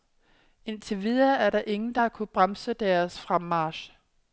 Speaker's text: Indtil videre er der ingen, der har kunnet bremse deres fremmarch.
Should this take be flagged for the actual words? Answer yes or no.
no